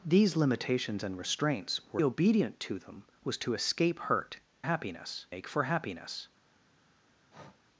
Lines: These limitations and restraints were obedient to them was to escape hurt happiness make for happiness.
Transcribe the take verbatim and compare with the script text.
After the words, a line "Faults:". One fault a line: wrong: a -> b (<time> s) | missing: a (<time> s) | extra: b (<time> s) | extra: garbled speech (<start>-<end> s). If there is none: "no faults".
These limitations and restraints were obedient to them was to escape hurt happiness make for happiness.
Faults:
no faults